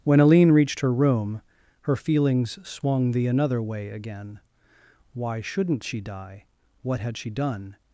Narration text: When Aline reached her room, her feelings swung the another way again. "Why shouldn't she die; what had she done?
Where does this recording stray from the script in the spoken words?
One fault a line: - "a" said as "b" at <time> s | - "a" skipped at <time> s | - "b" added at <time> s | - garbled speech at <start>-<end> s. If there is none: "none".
none